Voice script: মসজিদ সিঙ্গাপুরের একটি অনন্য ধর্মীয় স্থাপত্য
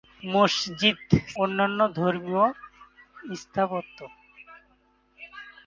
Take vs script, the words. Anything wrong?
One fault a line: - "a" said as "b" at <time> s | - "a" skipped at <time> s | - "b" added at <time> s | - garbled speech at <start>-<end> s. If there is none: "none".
- "সিঙ্গাপুরের একটি" skipped at 1.0 s